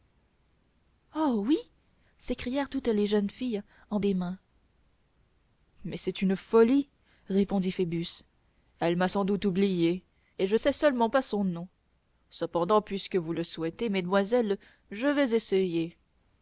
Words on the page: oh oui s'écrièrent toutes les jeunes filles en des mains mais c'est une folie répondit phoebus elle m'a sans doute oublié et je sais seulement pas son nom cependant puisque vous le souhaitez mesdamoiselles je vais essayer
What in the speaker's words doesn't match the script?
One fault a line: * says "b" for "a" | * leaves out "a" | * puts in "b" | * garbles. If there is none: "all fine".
all fine